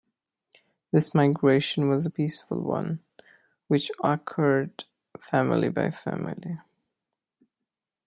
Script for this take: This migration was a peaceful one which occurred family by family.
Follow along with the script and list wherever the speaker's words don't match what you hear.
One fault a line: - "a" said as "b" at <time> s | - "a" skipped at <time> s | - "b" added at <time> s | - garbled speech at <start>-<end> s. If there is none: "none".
none